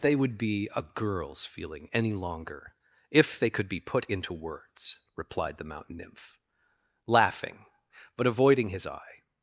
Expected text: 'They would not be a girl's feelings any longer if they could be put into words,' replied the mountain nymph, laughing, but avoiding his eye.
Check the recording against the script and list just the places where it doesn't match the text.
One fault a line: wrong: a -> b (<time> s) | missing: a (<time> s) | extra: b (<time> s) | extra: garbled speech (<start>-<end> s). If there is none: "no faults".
missing: not (0.4 s)
wrong: feelings -> feeling (1.4 s)